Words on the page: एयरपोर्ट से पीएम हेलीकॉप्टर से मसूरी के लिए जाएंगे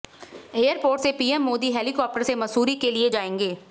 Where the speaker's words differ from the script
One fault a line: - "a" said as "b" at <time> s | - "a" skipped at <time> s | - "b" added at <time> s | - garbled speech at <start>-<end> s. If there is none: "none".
- "मोदी" added at 1.4 s